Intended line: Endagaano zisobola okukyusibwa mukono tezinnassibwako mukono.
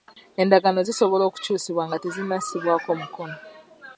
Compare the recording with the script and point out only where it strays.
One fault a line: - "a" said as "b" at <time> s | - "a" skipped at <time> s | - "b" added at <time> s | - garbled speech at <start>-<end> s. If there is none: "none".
- "mukono" said as "nga" at 1.9 s